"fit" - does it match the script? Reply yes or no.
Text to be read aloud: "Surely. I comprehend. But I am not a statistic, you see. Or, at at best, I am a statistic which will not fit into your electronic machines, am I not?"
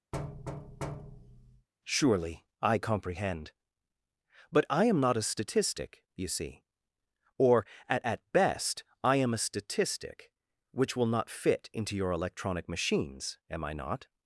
yes